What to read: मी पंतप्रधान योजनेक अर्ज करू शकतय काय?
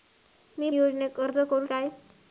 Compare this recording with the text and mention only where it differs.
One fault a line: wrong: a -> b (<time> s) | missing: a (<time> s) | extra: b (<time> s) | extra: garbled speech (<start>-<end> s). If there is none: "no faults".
missing: पंतप्रधान (0.7 s)
missing: शकतय (1.6 s)